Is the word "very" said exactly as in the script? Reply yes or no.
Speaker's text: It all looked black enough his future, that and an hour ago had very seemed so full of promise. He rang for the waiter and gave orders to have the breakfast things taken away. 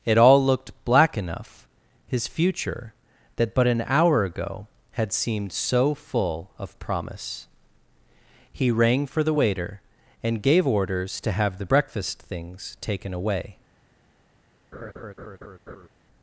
no